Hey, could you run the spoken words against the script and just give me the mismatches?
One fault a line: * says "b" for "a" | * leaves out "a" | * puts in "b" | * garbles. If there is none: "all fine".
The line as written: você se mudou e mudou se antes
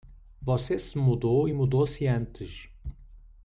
all fine